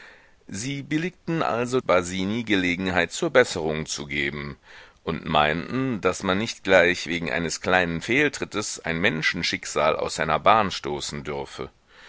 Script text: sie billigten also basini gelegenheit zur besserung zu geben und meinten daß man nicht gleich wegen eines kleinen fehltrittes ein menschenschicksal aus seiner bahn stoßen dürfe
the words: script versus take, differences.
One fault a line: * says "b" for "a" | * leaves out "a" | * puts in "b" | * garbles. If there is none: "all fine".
all fine